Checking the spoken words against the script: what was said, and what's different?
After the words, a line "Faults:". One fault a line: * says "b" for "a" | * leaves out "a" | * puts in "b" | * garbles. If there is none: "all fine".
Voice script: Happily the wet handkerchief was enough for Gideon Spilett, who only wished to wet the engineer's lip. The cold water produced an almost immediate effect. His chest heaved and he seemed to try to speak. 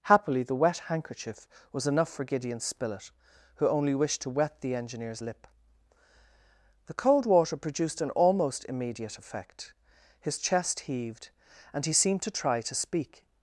Happily the wet handkerchief was enough for Gideon Spilett, who only wished to wet the engineer's lip. The cold water produced an almost immediate effect. His chest heaved and he seemed to try to speak.
Faults:
all fine